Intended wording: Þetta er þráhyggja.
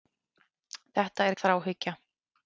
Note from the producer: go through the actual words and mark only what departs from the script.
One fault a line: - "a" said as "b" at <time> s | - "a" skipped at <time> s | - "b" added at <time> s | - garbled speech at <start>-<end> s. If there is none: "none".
none